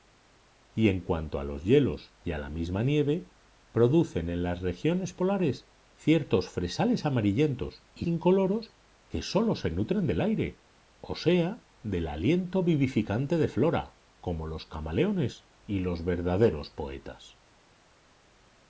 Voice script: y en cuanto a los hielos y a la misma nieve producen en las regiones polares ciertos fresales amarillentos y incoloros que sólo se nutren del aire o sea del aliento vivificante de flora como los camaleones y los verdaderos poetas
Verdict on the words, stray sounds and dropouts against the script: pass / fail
pass